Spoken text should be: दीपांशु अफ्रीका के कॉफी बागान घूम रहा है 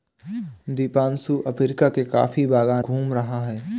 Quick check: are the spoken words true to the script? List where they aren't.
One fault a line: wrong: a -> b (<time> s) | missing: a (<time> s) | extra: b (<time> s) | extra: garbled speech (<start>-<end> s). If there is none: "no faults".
no faults